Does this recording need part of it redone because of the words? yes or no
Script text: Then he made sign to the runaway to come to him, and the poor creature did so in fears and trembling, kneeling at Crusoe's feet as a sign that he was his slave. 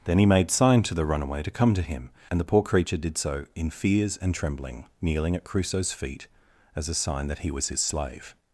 no